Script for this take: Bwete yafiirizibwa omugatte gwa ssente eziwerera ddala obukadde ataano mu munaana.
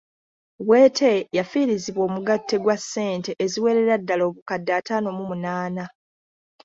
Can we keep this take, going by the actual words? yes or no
yes